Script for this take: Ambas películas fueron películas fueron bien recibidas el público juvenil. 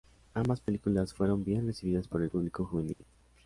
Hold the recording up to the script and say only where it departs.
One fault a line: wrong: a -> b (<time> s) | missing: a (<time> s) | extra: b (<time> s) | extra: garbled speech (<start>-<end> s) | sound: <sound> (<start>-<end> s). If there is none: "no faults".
missing: películas fueron (1.4 s)
extra: por (2.1 s)
sound: dropout (2.9-3.0 s)